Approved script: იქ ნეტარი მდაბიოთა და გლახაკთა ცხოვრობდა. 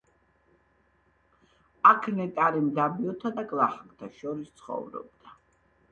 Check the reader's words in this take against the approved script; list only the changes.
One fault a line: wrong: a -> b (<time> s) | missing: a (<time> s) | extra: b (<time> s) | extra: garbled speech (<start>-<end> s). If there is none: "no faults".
wrong: იქ -> აქ (1.9 s)
extra: შორის (4.2 s)